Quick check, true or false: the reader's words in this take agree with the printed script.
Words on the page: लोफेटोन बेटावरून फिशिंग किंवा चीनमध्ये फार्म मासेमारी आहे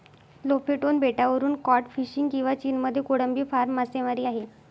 false